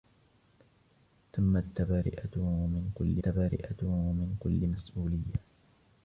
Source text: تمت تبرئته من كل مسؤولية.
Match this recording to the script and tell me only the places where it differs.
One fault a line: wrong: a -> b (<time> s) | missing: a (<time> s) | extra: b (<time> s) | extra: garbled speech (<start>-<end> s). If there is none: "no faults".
extra: تبرئته من كل (3.2 s)